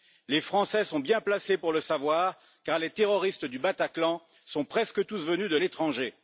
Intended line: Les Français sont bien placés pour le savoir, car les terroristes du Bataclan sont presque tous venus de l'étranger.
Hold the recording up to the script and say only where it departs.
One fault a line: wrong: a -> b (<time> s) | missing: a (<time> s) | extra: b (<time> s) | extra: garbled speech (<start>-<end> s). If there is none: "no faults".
no faults